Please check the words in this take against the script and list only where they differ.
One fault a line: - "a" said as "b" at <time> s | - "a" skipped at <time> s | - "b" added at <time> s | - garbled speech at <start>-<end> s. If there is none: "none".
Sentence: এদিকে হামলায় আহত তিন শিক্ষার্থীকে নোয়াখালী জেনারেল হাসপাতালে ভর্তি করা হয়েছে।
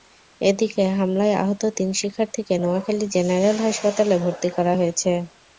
none